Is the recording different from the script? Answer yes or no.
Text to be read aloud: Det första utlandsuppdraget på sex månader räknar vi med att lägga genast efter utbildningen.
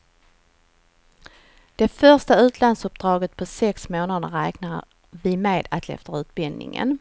yes